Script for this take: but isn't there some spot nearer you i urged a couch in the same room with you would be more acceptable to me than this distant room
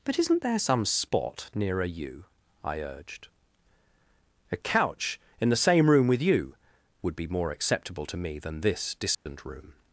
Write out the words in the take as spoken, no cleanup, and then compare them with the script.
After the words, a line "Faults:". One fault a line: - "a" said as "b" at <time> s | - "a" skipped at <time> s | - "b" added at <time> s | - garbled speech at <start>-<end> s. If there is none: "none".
but isn't there some spot nearer you i urged a couch in the same room with you would be more acceptable to me than this distant room
Faults:
none